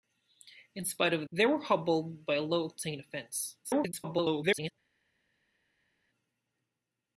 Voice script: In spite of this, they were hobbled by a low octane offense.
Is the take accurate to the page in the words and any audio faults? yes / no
no